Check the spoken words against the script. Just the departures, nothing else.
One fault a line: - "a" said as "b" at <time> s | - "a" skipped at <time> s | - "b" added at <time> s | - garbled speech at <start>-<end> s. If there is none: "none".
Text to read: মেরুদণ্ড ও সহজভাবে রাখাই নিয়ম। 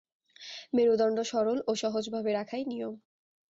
- "সরল" added at 1.3 s